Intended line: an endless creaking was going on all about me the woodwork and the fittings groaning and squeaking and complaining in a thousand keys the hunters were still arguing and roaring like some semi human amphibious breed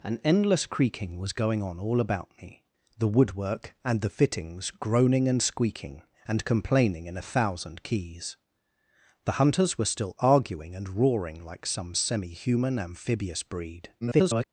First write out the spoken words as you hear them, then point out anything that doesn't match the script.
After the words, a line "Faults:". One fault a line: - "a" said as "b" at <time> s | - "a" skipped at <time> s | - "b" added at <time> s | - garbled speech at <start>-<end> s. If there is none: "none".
an endless creaking was going on all about me the woodwork and the fittings groaning and squeaking and complaining in a thousand keys the hunters were still arguing and roaring like some semi human amphibious breed [garbled]
Faults:
- garbled speech at 14.0-14.4 s